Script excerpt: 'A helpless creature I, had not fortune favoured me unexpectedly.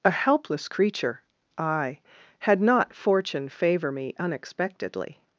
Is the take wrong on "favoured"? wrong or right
wrong